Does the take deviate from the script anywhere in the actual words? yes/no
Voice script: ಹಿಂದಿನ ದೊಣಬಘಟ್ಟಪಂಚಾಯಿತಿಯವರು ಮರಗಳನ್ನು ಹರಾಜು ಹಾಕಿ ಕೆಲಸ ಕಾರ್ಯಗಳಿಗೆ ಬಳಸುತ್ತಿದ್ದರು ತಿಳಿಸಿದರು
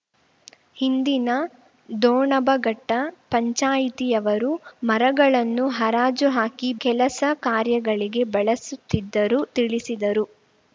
no